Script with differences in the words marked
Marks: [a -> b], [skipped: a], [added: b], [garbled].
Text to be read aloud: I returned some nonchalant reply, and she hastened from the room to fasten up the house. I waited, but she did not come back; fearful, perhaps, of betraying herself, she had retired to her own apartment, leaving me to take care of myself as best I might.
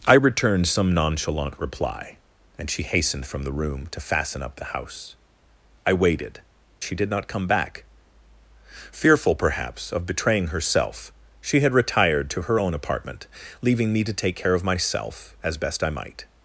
I returned some nonchalant reply, and she hastened from the room to fasten up the house. I waited, [skipped: but] she did not come back; fearful, perhaps, of betraying herself, she had retired to her own apartment, leaving me to take care of myself as best I might.